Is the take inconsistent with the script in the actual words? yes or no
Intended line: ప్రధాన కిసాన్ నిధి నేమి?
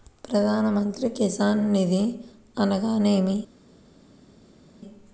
yes